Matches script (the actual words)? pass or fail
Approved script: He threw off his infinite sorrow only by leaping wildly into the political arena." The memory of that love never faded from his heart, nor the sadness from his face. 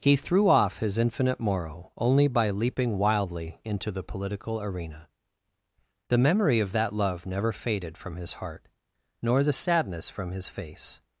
fail